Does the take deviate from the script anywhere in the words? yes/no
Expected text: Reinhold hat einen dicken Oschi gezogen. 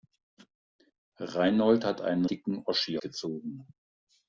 no